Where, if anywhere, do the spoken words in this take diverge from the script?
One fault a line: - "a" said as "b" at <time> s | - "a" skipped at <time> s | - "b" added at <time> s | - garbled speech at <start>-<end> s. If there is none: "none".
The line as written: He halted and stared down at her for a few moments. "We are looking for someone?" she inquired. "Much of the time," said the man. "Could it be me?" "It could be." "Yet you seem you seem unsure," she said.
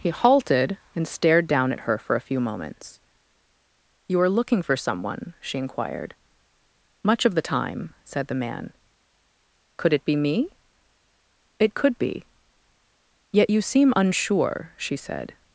- "We" said as "You" at 4.1 s
- "you seem" skipped at 13.9 s